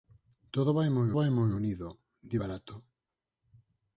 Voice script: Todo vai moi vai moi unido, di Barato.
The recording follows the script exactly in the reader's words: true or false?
true